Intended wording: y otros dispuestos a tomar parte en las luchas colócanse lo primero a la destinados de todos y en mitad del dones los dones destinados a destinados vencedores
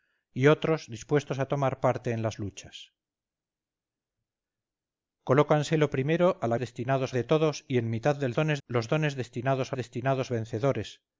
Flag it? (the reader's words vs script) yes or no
no